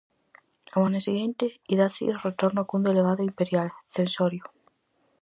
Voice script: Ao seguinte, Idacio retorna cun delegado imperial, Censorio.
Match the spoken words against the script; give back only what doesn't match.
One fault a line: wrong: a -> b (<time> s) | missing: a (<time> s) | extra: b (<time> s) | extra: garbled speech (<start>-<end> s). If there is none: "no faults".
extra: ano (0.9 s)